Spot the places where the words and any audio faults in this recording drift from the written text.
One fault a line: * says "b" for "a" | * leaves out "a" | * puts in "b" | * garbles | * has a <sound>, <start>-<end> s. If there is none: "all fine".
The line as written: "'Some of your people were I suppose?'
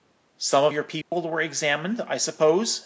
* has a dropout, 1.0-1.1 s
* puts in "examined"